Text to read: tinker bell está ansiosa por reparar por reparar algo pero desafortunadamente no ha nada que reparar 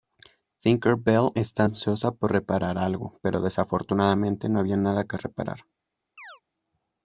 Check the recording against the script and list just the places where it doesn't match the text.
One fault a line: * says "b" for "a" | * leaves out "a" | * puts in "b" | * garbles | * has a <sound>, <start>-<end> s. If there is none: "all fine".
* leaves out "por reparar"
* says "había" for "ha"
* has a chirp, 6.2-6.4 s